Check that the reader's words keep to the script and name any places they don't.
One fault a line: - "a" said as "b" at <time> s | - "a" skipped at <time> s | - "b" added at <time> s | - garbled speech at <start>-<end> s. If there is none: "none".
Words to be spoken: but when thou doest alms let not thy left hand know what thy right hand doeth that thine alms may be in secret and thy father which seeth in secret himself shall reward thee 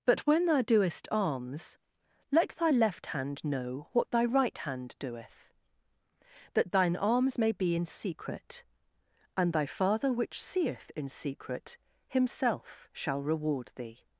- "not" skipped at 2.5 s